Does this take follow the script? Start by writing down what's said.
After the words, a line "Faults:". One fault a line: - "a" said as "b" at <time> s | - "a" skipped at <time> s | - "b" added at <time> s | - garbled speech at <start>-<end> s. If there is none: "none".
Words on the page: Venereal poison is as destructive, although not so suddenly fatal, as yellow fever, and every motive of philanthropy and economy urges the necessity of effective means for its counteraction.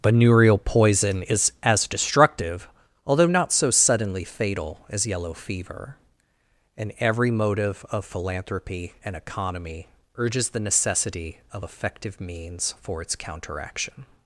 Venereal poison is as destructive, although not so suddenly fatal, as yellow fever, and every motive of philanthropy and economy urges the necessity of effective means for its counteraction.
Faults:
none